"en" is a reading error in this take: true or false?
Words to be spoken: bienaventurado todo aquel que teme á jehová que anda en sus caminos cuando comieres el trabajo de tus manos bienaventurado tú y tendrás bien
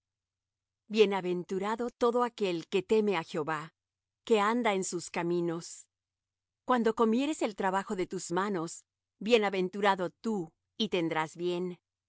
false